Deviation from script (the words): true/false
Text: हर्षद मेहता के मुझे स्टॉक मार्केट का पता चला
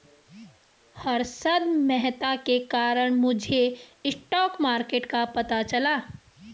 true